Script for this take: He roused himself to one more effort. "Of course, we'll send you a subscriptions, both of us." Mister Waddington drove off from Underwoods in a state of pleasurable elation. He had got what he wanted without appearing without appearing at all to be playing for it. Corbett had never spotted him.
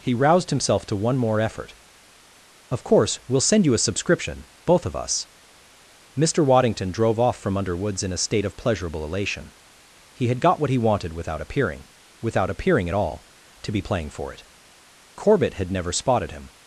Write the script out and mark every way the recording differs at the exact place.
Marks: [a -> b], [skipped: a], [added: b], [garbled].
He roused himself to one more effort. "Of course, we'll send you a [subscriptions, -> subscription] both of us." Mister Waddington drove off from Underwoods in a state of pleasurable elation. He had got what he wanted without appearing without appearing at all to be playing for it. Corbett had never spotted him.